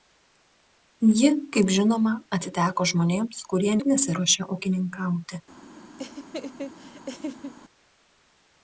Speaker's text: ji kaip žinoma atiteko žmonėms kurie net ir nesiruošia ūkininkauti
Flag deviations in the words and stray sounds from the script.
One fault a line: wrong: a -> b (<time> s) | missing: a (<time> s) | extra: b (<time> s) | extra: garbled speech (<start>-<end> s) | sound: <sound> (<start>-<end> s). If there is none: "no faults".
missing: net (3.7 s)
sound: laugh (6.0-7.5 s)